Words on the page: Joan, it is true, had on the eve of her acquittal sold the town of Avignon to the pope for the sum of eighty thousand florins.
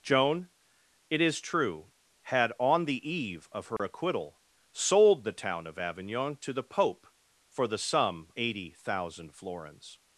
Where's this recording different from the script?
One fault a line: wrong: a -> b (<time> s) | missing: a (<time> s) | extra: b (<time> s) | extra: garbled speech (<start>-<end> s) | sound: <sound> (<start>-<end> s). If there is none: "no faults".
sound: dropout (3.8-3.8 s)
missing: of (8.3 s)